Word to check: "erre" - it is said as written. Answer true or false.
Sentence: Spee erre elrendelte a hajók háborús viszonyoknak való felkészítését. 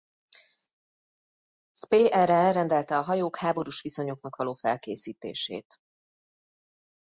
true